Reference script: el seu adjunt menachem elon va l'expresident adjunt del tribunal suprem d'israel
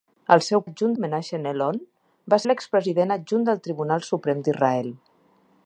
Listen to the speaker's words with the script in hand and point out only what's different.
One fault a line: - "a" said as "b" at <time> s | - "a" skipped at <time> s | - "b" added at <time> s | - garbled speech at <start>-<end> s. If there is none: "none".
none